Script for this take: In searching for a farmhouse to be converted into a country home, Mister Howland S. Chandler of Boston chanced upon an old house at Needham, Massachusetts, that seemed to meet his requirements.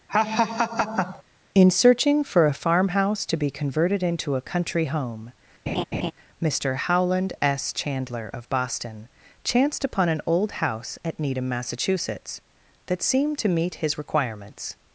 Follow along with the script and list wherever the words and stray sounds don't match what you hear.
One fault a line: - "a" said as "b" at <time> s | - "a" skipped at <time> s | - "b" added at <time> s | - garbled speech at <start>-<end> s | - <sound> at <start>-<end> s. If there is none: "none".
- laugh at 0.1-1.2 s
- laugh at 5.7-6.1 s